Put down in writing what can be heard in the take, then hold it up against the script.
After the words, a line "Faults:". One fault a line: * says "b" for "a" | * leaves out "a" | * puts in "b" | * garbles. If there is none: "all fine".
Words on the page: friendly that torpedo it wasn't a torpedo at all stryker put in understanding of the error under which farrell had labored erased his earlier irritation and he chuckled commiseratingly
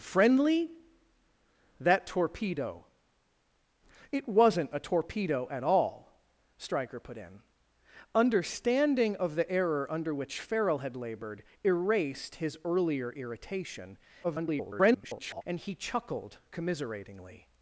friendly that torpedo it wasn't a torpedo at all stryker put in understanding of the error under which farrell had labored erased his earlier irritation [garbled] and he chuckled commiseratingly
Faults:
* garbles